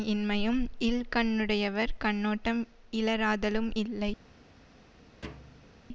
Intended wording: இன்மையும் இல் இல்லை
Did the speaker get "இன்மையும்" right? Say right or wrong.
right